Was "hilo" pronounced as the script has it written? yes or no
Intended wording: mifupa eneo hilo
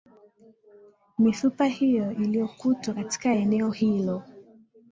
yes